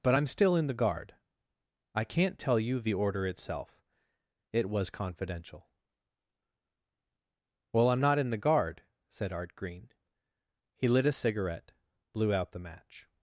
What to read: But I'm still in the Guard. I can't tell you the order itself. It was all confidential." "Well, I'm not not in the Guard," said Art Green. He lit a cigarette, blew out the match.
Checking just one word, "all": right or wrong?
wrong